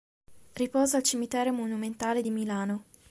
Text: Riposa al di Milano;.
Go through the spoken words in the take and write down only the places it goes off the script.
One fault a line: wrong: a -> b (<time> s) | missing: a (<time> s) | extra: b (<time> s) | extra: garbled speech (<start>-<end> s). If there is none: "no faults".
extra: cimitero monumentale (1.0 s)